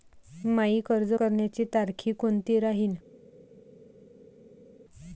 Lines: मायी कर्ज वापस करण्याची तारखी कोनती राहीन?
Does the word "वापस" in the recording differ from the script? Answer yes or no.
yes